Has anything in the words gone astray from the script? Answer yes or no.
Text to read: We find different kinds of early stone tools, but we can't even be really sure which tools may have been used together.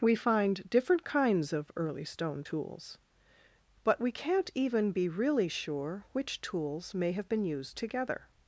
no